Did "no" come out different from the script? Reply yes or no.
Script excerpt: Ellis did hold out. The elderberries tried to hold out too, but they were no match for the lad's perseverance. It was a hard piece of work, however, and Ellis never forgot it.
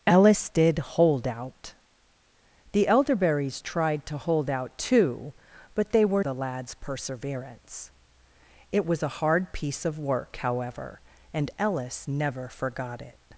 yes